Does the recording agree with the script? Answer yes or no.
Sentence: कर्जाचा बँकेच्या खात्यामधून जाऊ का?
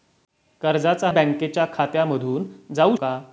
yes